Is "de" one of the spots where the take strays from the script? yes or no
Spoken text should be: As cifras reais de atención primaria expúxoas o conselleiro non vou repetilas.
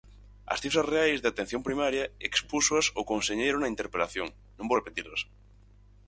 no